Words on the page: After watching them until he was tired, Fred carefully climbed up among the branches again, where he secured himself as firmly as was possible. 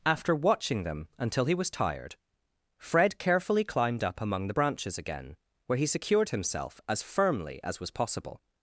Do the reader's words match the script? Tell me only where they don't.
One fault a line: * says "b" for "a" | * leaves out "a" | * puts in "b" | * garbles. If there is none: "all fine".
all fine